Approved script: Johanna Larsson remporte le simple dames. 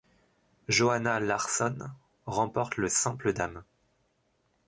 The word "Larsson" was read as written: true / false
true